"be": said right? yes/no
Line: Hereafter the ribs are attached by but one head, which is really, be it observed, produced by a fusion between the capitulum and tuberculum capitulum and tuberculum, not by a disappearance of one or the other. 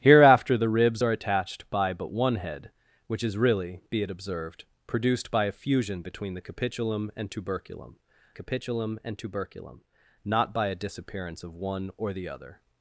yes